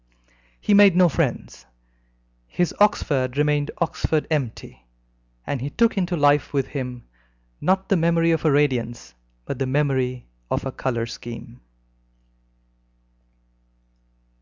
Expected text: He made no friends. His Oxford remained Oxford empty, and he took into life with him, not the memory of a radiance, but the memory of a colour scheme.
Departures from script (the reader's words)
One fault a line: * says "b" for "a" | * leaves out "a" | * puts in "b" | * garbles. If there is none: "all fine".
all fine